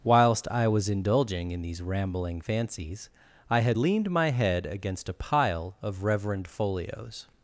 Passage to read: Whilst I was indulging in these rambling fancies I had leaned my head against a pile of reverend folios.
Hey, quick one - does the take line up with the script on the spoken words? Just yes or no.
yes